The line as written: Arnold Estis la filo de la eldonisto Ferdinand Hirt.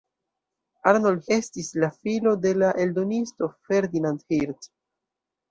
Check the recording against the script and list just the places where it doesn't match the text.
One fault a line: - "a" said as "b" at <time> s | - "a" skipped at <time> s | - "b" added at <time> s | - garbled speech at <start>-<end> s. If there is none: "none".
none